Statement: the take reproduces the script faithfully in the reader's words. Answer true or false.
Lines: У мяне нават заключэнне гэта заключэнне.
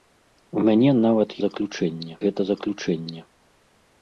true